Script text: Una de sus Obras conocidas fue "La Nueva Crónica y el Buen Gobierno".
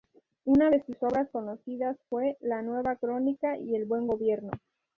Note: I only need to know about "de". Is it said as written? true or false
true